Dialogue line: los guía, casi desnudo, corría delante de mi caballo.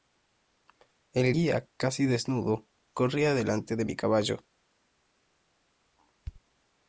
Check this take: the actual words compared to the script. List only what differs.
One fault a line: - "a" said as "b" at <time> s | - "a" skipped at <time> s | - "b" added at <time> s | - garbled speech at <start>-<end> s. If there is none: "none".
- "los" said as "el" at 1.1 s